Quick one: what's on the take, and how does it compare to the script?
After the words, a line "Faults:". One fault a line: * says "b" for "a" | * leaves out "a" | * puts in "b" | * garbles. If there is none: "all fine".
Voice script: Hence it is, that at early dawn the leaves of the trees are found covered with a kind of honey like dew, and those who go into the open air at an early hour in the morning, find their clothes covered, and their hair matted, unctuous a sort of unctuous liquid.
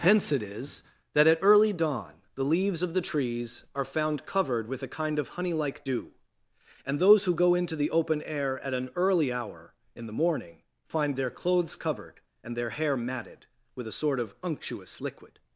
Hence it is, that at early dawn the leaves of the trees are found covered with a kind of honey like dew, and those who go into the open air at an early hour in the morning, find their clothes covered, and their hair matted, with a sort of unctuous liquid.
Faults:
* says "with" for "unctuous"